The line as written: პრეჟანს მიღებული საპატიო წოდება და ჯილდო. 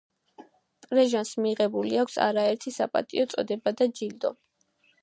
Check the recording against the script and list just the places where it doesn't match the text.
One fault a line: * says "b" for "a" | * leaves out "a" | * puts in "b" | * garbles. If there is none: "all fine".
* puts in "აქვს არაერთი"